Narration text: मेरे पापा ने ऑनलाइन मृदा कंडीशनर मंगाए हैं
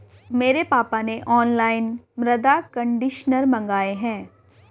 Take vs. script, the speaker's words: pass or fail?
pass